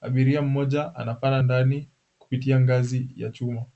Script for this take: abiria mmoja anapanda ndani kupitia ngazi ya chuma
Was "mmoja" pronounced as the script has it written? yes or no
yes